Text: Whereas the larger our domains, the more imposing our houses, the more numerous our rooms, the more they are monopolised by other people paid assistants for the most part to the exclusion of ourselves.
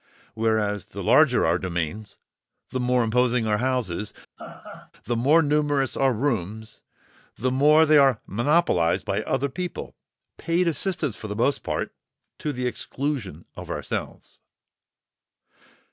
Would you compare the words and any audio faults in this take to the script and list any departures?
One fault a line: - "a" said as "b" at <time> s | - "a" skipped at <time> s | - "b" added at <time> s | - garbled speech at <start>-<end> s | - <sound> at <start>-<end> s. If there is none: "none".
- laugh at 4.4-4.9 s